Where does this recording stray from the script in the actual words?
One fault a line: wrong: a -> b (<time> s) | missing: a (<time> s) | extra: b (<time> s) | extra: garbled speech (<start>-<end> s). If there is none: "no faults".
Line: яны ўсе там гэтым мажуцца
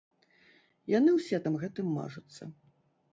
no faults